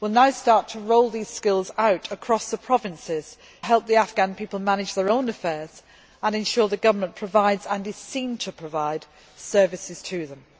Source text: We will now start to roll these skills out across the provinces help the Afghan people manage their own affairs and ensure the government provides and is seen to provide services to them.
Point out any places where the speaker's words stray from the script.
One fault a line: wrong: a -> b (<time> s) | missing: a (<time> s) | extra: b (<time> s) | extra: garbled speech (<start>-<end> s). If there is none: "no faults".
no faults